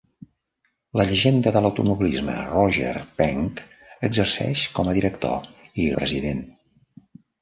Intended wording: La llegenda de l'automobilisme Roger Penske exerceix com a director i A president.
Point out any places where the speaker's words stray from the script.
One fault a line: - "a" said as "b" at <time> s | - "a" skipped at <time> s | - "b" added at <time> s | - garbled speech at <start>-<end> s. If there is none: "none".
none